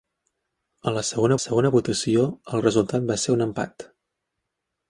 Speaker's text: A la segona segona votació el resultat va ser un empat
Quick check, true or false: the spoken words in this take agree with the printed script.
true